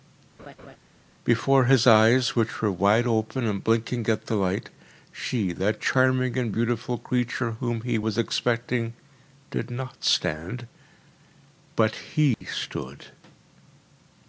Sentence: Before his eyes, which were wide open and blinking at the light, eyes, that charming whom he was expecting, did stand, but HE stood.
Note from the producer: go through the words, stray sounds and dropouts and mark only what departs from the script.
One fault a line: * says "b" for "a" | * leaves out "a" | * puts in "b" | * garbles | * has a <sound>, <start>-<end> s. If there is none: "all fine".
* has a laugh, 0.4-0.8 s
* says "she" for "eyes"
* puts in "and beautiful creature"
* puts in "not"
* has a dropout, 12.3-12.4 s